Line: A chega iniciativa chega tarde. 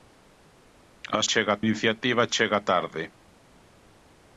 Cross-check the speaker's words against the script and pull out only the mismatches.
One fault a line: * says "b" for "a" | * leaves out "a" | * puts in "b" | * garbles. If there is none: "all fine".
all fine